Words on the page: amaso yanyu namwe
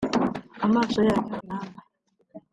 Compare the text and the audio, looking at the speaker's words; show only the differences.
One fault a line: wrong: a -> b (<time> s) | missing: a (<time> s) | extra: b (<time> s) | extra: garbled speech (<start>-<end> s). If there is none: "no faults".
no faults